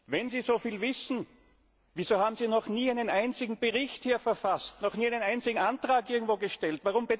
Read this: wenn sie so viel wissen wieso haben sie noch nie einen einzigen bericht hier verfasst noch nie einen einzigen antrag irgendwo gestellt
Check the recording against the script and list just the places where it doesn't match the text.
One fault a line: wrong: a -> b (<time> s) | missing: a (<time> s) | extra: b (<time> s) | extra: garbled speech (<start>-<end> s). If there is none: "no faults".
no faults